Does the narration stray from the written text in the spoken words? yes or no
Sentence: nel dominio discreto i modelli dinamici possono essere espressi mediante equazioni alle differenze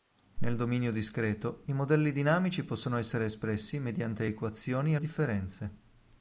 yes